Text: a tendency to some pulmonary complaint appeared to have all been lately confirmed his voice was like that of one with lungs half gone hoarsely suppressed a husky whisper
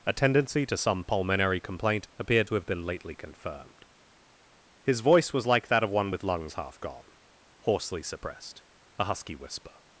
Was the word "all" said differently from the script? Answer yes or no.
yes